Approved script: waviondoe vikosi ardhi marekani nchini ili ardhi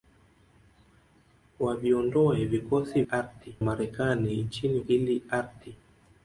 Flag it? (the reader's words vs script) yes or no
no